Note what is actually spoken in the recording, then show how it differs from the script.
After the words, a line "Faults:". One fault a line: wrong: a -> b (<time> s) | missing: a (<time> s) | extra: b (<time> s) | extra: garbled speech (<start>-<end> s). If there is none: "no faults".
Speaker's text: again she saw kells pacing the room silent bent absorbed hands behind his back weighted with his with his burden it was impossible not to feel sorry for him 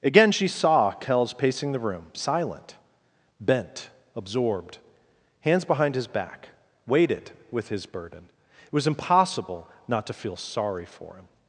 again she saw kells pacing the room silent bent absorbed hands behind his back weighted with his burden it was impossible not to feel sorry for him
Faults:
missing: with his (7.9 s)